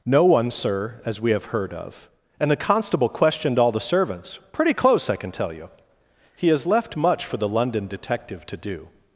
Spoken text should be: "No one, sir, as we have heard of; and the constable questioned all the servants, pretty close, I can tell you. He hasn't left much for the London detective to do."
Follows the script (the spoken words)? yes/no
no